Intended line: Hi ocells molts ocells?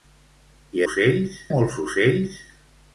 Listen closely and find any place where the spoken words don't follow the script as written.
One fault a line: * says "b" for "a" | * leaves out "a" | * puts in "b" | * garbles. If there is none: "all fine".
all fine